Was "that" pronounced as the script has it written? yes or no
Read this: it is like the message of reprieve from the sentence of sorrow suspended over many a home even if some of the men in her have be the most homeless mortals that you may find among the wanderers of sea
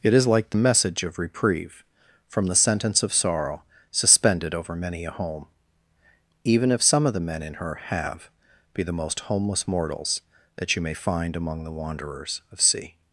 yes